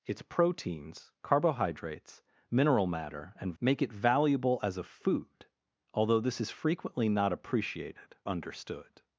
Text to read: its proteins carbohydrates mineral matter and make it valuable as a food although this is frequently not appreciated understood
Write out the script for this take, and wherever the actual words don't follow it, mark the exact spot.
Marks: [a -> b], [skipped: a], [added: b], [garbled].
its proteins carbohydrates mineral matter and make it valuable as a food although this is frequently not appreciated understood